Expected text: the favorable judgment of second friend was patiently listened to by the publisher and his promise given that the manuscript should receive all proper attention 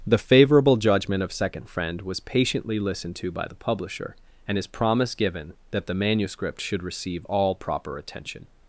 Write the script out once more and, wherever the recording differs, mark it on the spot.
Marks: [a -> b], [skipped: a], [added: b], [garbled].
the favorable judgment of second friend was patiently listened to by the publisher and his promise given that the manuscript should receive all proper attention